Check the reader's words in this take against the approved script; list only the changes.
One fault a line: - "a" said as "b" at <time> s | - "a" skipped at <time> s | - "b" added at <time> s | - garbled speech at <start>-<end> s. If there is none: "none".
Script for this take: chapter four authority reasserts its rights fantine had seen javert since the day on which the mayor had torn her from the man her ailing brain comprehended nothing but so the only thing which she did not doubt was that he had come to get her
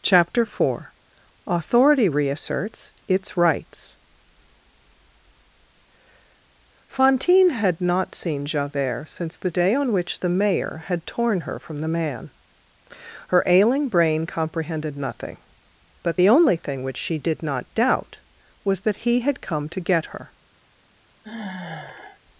- "not" added at 7.8 s
- "so" skipped at 16.2 s